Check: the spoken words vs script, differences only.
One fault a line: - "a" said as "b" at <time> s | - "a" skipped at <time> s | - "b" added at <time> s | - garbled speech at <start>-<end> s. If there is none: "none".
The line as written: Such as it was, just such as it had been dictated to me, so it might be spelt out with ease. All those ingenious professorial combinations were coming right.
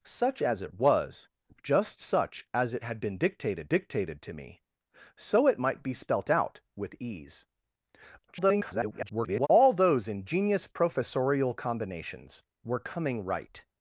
- "dictated" added at 3.7 s
- garbled speech at 8.3-9.5 s